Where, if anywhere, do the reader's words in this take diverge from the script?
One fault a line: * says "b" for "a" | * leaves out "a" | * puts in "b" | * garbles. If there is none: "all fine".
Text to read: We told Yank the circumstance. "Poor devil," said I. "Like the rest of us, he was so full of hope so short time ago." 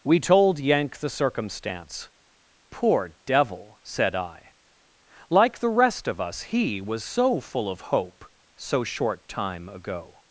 all fine